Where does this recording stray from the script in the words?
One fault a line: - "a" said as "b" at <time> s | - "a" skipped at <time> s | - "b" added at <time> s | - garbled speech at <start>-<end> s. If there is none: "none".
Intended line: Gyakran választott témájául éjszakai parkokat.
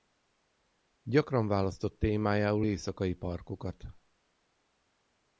none